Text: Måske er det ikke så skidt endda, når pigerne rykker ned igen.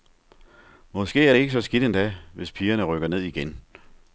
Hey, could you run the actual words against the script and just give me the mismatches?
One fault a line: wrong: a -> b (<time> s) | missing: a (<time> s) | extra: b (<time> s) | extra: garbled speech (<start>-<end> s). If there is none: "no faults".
wrong: når -> hvis (2.3 s)